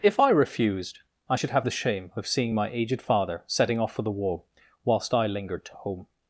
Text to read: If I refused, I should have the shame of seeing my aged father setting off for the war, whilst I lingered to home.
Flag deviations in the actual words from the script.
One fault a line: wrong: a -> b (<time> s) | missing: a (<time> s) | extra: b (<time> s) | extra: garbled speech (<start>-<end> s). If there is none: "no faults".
no faults